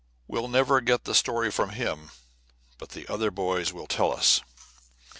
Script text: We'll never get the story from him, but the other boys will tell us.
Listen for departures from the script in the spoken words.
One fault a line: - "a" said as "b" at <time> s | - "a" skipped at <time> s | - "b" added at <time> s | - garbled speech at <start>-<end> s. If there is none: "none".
none